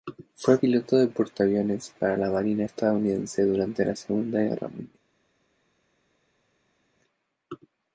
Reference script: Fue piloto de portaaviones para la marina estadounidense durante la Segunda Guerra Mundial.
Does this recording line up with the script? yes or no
yes